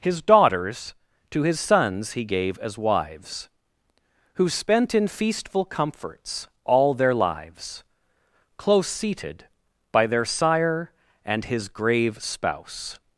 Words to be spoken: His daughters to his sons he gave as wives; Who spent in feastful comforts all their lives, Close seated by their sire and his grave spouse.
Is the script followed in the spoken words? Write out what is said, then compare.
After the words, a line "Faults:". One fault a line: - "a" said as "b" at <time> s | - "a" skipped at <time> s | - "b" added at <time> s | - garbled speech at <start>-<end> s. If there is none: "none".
His daughters to his sons he gave as wives; Who spent in feastful comforts all their lives, Close seated by their sire and his grave spouse.
Faults:
none